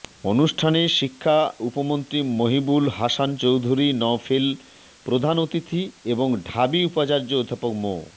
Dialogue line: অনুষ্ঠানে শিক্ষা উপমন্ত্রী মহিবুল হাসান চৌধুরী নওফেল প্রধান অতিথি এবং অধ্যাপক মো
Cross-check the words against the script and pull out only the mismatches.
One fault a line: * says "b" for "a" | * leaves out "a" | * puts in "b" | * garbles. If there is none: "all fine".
* puts in "ঢাবি উপাচার্য"